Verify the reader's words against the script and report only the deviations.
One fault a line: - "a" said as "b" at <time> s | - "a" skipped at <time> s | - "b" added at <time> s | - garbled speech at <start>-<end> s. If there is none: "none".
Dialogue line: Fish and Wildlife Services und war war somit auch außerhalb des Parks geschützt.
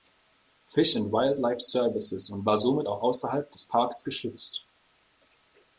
- "war" skipped at 2.6 s